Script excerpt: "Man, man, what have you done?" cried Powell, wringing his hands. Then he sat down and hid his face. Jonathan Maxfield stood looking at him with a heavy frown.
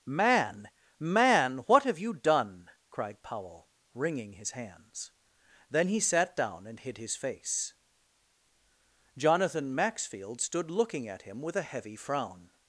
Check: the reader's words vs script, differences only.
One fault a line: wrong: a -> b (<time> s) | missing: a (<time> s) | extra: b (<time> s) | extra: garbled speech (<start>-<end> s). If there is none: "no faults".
no faults